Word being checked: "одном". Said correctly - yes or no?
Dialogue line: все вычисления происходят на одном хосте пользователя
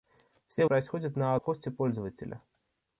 no